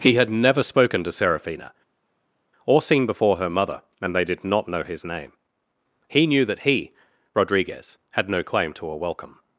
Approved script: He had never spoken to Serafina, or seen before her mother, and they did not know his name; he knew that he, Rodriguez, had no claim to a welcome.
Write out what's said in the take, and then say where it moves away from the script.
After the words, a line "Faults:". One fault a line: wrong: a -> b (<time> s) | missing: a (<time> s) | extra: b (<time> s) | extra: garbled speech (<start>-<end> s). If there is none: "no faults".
He had never spoken to Serafina, or seen before her mother, and they did not know his name; he knew that he, Rodriguez, had no claim to a welcome.
Faults:
no faults